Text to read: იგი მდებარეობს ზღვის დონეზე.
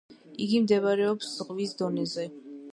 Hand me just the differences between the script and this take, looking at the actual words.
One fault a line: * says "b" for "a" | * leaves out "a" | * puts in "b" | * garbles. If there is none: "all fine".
all fine